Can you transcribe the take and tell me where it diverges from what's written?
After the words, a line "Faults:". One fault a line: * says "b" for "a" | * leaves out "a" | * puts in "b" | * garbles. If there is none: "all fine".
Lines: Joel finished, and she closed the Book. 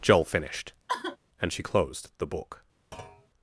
Joel finished, and she closed the Book.
Faults:
all fine